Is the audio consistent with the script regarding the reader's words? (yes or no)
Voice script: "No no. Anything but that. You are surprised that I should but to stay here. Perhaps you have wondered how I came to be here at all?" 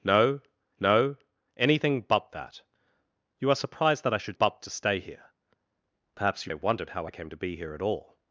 yes